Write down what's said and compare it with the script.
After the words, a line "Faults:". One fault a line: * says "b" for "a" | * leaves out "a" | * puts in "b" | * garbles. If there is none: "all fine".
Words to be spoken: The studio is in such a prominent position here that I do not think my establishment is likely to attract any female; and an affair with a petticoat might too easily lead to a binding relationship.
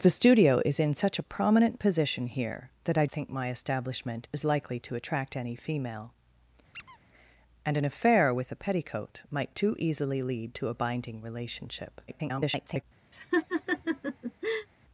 The studio is in such a prominent position here that I think my establishment is likely to attract any female; and an affair with a petticoat might too easily lead to a binding relationship. [garbled]
Faults:
* leaves out "do not"
* garbles